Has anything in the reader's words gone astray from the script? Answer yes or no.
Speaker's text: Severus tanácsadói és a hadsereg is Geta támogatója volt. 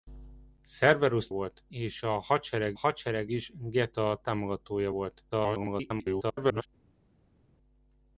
yes